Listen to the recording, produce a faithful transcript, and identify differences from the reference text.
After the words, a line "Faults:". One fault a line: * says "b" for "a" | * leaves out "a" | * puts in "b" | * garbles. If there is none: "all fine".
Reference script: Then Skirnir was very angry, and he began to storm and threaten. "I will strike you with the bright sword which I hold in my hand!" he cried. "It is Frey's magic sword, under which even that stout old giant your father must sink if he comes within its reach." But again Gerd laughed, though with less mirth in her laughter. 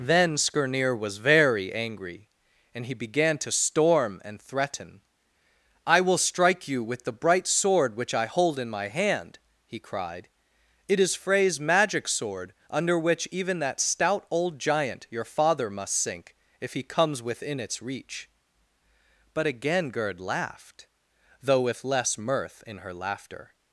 Then Skirnir was very angry, and he began to storm and threaten. "I will strike you with the bright sword which I hold in my hand!" he cried. "It is Frey's magic sword, under which even that stout old giant your father must sink if he comes within its reach." But again Gerd laughed, though with less mirth in her laughter.
Faults:
all fine